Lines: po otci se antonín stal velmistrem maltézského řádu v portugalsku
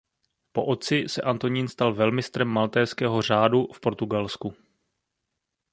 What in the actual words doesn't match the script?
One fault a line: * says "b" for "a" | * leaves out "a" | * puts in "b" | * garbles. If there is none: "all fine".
all fine